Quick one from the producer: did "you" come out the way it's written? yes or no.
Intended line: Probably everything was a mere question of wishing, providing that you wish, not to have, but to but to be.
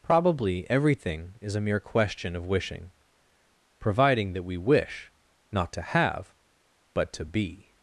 no